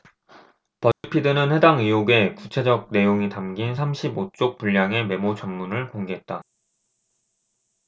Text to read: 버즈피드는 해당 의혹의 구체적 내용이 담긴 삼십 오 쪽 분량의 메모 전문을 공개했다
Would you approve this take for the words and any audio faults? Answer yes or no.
no